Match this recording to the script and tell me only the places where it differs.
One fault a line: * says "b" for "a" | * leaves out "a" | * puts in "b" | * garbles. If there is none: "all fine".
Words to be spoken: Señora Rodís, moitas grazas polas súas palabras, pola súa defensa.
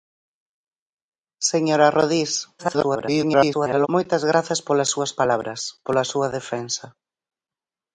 * garbles